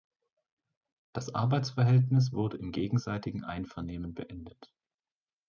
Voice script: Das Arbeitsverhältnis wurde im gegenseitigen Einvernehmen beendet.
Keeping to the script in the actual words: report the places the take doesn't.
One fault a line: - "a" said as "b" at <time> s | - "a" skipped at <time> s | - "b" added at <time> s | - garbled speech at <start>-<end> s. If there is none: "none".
none